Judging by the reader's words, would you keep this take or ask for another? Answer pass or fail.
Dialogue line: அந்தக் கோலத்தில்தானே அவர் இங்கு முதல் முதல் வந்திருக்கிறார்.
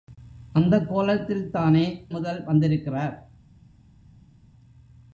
fail